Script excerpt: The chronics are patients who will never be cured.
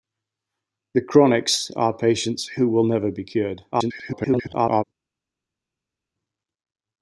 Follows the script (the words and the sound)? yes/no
no